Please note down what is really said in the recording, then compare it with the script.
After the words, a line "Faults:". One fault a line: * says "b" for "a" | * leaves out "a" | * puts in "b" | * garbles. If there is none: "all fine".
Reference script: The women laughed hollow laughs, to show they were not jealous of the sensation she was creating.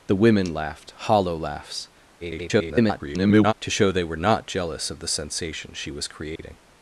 The women laughed hollow laughs, [garbled] to show they were not jealous of the sensation she was creating.
Faults:
* garbles